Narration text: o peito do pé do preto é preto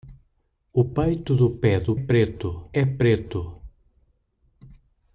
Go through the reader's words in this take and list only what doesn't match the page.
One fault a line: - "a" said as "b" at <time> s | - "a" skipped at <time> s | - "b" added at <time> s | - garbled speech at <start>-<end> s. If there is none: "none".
none